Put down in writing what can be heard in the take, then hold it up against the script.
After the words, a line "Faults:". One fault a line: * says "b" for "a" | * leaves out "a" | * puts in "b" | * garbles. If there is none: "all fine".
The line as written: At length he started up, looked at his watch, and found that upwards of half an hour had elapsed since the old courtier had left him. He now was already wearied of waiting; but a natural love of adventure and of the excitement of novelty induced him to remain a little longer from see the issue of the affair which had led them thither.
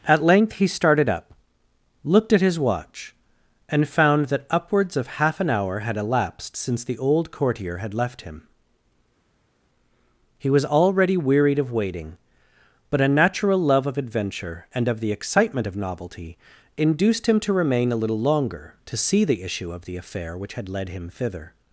At length he started up, looked at his watch, and found that upwards of half an hour had elapsed since the old courtier had left him. He was already wearied of waiting; but a natural love of adventure and of the excitement of novelty induced him to remain a little longer to see the issue of the affair which had led him thither.
Faults:
* leaves out "now"
* says "to" for "from"
* says "him" for "them"